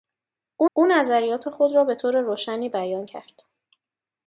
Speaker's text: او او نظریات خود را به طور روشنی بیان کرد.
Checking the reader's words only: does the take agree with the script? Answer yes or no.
yes